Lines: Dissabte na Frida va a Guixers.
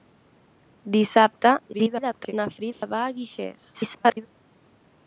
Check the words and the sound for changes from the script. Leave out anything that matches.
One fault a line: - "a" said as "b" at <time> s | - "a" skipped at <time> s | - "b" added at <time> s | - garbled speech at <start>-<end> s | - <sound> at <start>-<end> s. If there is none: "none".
- garbled speech at 1.7-2.3 s
- dropout at 2.7-2.8 s
- garbled speech at 3.7-4.3 s